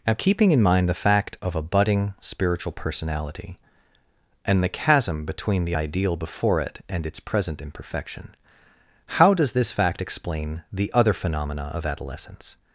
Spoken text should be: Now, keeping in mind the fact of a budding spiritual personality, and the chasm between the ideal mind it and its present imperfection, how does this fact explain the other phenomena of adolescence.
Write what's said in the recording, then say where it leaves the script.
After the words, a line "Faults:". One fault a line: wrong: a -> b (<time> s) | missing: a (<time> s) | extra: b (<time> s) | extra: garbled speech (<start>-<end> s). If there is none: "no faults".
Now, keeping in mind the fact of a budding spiritual personality, and the chasm between the ideal before it and its present imperfection, how does this fact explain the other phenomena of adolescence.
Faults:
wrong: mind -> before (6.2 s)